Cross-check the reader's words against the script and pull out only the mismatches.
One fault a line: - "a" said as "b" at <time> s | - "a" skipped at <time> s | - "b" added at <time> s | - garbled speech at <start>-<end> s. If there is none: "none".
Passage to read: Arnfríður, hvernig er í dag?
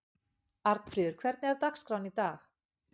- "dagskráin" added at 1.7 s